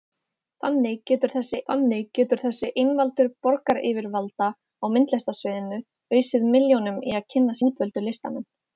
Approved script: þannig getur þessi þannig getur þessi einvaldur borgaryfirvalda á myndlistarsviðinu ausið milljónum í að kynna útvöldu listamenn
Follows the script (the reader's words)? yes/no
yes